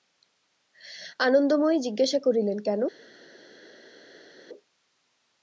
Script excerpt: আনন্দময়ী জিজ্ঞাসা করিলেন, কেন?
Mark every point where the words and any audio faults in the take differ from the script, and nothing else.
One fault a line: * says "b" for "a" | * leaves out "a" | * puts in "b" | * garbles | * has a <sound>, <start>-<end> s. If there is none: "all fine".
all fine